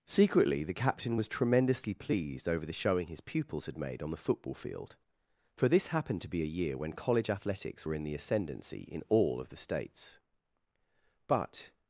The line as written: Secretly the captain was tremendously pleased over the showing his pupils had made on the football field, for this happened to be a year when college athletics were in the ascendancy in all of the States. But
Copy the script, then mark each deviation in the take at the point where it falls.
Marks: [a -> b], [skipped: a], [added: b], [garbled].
Secretly the captain was tremendously pleased over the showing his pupils had made on the football field, for this happened to be a year when college athletics were in the ascendancy in all of the States. But